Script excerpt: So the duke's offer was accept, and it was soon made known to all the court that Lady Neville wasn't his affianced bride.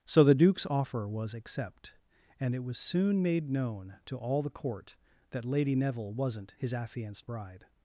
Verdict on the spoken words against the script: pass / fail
pass